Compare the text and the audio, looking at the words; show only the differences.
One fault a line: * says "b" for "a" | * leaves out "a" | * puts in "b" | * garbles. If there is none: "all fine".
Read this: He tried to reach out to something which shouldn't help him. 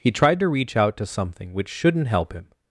all fine